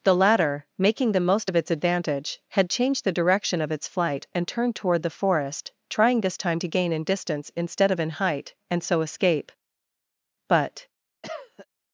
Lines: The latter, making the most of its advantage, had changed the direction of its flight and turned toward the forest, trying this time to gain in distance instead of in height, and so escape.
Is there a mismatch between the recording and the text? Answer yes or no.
yes